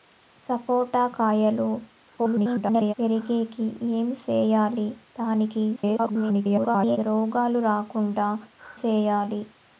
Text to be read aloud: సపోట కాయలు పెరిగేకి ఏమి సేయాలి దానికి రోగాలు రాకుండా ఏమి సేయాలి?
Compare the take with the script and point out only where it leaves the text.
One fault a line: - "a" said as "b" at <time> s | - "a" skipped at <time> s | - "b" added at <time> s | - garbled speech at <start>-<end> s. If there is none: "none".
- garbled speech at 2.2-2.9 s
- garbled speech at 5.8-7.0 s
- "ఏమి" skipped at 8.3 s